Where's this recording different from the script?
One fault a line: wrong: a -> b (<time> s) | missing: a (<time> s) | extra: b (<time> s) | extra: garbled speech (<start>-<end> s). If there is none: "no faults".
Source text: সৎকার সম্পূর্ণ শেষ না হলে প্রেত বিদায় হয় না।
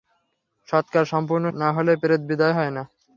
missing: শেষ (1.4 s)